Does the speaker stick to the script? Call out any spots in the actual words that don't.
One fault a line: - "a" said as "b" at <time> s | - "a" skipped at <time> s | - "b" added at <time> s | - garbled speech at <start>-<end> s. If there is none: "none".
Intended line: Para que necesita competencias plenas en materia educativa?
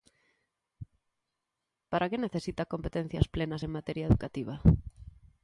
none